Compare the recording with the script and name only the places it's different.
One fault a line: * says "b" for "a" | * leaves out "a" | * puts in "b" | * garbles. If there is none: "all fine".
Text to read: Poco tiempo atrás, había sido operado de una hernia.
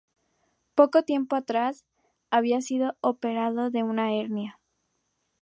all fine